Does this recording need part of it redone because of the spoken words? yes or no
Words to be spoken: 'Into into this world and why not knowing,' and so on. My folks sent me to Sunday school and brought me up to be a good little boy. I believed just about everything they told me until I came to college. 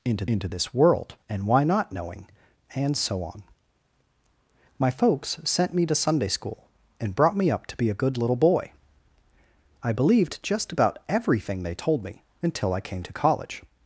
no